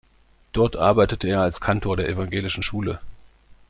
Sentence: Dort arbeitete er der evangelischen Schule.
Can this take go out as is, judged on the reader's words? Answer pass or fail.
fail